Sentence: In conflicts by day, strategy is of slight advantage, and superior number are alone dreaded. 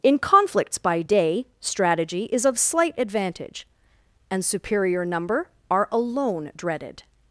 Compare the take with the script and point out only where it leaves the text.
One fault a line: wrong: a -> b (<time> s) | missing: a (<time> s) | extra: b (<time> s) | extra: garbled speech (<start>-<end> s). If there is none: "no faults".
no faults